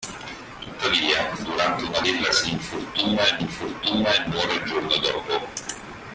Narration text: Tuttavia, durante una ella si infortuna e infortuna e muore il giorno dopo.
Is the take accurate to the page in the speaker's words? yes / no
yes